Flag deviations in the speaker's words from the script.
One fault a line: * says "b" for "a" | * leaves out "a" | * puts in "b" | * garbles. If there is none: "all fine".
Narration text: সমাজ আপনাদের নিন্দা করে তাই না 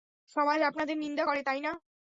all fine